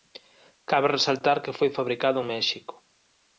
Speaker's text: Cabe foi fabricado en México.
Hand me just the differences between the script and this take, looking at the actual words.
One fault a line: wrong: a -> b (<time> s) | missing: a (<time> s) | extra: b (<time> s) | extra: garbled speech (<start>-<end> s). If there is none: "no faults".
extra: resaltar que (1.0 s)